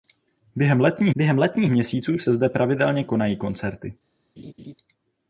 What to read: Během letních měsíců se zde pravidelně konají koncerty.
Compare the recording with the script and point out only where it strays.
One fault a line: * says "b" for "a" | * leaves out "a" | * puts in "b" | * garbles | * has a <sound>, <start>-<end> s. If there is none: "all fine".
* puts in "během letních"
* has a laugh, 4.4-4.7 s